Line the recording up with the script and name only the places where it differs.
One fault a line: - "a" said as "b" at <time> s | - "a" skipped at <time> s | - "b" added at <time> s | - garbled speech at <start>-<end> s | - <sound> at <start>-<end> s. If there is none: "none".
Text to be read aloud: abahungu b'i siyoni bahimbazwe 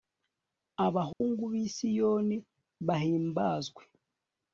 - dropout at 1.1-1.2 s